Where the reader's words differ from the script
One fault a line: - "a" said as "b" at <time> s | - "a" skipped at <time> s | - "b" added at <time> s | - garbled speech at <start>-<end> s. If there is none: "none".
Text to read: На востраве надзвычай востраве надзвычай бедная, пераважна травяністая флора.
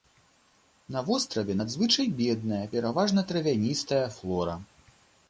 - "востраве надзвычай" skipped at 2.1 s